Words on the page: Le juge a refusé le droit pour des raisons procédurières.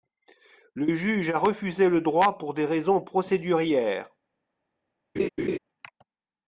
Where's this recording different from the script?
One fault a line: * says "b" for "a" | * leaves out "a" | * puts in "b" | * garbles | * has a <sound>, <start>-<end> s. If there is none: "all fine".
* has a laugh, 5.2-5.6 s